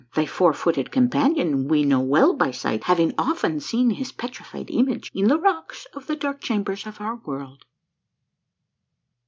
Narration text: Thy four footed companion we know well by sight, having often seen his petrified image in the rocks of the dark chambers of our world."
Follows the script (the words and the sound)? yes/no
yes